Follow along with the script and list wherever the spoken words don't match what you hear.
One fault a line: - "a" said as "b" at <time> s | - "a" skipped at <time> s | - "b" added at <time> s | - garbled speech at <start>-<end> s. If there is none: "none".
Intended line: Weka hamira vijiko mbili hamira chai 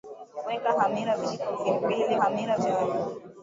none